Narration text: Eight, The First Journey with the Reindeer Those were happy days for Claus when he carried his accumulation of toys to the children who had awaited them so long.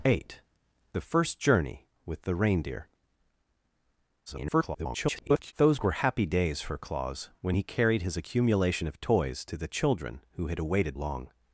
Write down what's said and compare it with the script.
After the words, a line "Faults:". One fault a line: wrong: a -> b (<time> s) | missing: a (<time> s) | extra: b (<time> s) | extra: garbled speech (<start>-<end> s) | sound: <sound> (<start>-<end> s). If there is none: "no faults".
Eight, The First Journey with the Reindeer [garbled] Those were happy days for Claus when he carried his accumulation of toys to the children who had awaited long.
Faults:
extra: garbled speech (4.3-5.5 s)
missing: them so (11.0 s)